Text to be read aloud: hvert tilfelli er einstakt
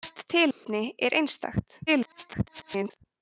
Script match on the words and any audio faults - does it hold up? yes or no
no